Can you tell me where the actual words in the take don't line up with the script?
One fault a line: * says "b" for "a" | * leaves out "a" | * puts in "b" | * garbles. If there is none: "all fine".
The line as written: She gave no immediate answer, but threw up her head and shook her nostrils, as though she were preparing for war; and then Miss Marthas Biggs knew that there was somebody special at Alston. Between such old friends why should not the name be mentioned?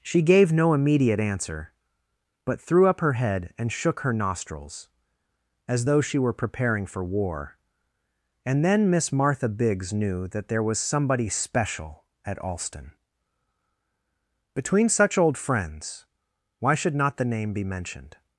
* says "Martha" for "Marthas"